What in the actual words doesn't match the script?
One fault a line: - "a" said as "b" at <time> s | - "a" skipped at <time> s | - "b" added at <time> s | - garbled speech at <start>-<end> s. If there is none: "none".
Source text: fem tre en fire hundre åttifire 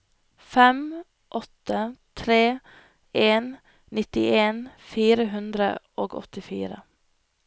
- "åtte" added at 1.3 s
- "nittien" added at 4.0 s
- "og" added at 6.0 s